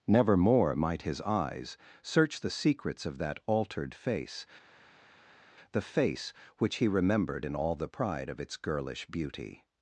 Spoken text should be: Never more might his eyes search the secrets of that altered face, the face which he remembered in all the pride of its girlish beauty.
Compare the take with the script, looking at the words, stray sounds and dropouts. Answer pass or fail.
pass